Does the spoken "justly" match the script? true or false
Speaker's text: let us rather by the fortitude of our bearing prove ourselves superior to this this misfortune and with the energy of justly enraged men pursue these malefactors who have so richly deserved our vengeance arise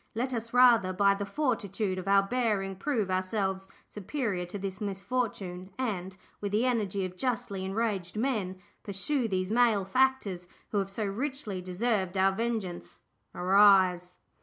true